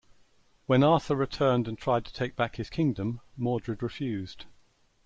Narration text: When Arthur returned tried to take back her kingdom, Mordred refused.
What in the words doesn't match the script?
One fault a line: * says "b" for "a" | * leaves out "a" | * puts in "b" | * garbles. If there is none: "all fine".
* puts in "and"
* says "his" for "her"